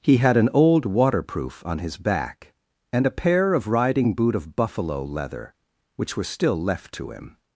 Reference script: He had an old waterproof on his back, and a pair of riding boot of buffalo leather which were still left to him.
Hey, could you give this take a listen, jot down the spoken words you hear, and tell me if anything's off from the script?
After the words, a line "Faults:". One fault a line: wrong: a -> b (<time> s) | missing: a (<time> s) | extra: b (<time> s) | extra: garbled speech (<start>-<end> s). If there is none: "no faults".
He had an old waterproof on his back, and a pair of riding boot of buffalo leather which were still left to him.
Faults:
no faults